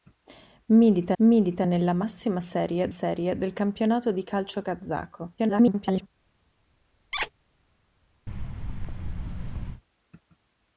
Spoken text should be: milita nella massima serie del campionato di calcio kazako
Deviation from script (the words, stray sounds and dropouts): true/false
true